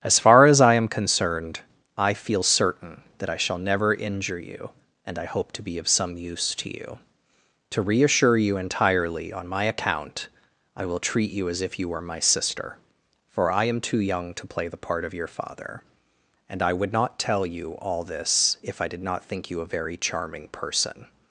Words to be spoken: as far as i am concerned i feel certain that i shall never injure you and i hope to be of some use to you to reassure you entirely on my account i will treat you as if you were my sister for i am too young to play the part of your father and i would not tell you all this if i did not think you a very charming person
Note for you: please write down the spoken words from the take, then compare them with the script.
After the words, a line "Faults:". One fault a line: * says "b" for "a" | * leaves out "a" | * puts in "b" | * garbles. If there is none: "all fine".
as far as i am concerned i feel certain that i shall never injure you and i hope to be of some use to you to reassure you entirely on my account i will treat you as if you were my sister for i am too young to play the part of your father and i would not tell you all this if i did not think you a very charming person
Faults:
all fine